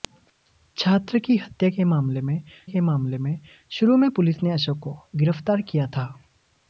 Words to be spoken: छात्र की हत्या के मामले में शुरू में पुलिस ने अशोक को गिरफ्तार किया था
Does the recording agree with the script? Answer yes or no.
no